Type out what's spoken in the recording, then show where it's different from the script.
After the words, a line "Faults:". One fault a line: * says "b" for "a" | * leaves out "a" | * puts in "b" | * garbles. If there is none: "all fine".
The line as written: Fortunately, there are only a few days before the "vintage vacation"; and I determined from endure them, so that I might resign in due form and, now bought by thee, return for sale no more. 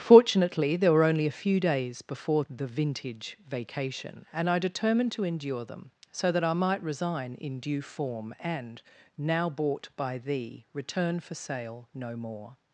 Fortunately, there were only a few days before the "vintage vacation"; and I determined to endure them, so that I might resign in due form and, now bought by thee, return for sale no more.
Faults:
* says "were" for "are"
* says "to" for "from"